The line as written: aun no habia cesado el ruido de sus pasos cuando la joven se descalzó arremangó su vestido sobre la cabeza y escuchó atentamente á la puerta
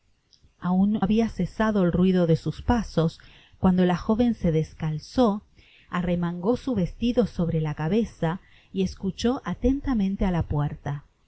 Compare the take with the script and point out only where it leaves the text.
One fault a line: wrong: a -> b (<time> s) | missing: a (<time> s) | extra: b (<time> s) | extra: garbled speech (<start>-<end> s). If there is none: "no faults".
missing: no (1.0 s)